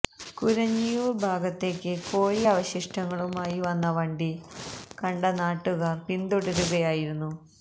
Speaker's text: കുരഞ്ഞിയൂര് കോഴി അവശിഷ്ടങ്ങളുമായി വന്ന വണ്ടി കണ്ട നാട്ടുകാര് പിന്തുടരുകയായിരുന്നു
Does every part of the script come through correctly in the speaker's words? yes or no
no